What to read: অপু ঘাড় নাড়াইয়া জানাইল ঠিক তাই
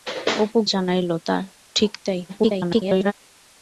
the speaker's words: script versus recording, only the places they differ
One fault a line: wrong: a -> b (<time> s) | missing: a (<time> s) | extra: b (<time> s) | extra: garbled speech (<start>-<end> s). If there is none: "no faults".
missing: ঘাড় নাড়াইয়া (0.6 s)
extra: garbled speech (2.3-3.1 s)